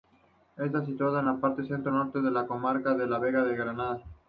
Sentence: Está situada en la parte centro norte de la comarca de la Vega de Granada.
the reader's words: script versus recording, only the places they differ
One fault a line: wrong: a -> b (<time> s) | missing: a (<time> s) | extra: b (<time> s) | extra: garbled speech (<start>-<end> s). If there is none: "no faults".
no faults